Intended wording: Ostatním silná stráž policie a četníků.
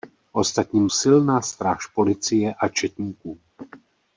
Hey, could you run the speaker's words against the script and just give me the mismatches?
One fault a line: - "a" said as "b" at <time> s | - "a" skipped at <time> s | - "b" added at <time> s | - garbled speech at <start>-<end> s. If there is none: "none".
none